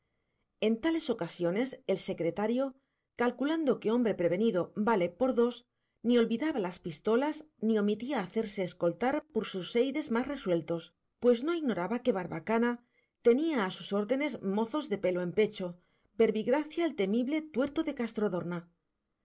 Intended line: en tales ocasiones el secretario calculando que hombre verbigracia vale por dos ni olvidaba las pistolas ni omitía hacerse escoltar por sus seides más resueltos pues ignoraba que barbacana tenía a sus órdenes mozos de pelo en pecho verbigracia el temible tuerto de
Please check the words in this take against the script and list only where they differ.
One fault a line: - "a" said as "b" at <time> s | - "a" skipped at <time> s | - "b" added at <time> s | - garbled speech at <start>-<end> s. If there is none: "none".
- "verbigracia" said as "prevenido" at 4.2 s
- "no" added at 11.4 s